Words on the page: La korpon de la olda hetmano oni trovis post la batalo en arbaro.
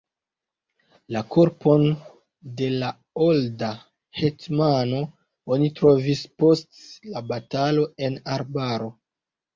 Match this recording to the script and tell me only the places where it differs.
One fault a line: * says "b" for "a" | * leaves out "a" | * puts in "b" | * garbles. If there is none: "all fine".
all fine